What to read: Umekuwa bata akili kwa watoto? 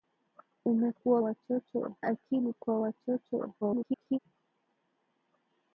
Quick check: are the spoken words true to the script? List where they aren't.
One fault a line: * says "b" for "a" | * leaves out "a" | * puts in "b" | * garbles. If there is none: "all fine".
* says "watoto" for "bata"
* garbles